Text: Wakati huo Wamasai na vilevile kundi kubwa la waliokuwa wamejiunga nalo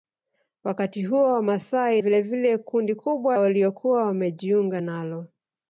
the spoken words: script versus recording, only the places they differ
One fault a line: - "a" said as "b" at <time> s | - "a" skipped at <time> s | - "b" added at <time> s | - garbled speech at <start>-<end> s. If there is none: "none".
- "na" skipped at 2.0 s
- "la" skipped at 3.4 s